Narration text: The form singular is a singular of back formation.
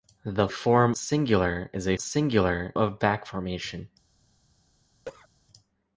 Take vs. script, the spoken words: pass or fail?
pass